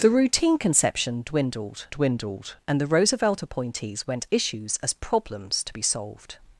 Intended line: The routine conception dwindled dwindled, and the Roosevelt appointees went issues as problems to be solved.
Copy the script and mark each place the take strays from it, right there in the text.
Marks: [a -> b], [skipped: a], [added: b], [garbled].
The routine conception dwindled dwindled, and the Roosevelt appointees went issues as problems to be solved.